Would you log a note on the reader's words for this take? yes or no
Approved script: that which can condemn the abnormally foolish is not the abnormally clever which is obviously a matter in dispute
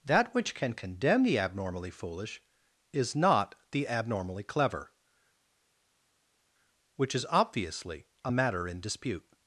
no